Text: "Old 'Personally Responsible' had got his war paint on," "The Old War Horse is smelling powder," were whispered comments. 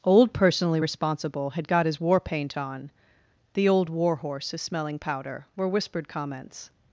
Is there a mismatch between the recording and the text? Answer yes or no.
no